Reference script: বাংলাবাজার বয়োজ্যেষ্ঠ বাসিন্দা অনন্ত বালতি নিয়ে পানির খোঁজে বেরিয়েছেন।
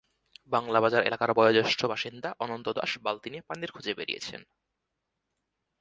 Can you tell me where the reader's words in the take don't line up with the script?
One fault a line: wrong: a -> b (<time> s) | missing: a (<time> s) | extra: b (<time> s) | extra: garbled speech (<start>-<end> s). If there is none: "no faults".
extra: এলাকার (1.0 s)
extra: দাস (2.7 s)